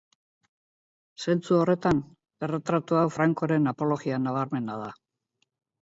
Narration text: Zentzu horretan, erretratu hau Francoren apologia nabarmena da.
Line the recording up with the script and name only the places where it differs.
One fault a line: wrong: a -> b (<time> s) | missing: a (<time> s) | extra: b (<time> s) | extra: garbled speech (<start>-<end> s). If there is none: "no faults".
no faults